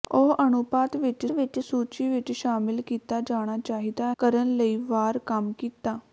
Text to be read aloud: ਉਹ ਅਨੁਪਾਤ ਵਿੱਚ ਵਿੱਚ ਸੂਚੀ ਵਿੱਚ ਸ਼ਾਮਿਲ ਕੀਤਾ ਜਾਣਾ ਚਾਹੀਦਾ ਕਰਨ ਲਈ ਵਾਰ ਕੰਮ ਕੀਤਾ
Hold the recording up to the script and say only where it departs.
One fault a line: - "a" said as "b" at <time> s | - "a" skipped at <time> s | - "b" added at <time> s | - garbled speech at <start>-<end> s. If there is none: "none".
none